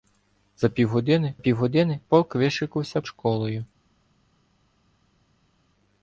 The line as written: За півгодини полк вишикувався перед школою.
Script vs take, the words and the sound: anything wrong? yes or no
yes